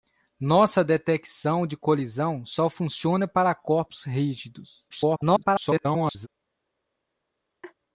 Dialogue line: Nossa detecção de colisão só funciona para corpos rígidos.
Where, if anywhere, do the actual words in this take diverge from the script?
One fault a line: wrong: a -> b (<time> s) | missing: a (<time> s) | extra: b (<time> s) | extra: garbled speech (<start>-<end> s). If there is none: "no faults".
extra: garbled speech (4.9-6.3 s)